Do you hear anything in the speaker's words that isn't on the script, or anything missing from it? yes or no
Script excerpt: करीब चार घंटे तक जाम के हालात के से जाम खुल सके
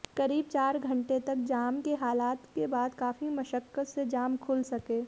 yes